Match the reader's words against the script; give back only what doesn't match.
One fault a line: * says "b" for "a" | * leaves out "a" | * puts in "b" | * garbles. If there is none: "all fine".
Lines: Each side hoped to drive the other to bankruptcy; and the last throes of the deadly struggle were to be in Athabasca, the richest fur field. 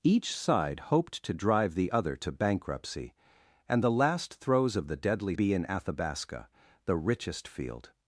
* leaves out "struggle were to"
* leaves out "fur"